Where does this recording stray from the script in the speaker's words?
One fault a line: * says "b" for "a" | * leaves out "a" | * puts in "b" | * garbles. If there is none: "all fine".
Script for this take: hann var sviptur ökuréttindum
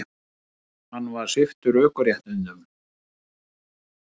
all fine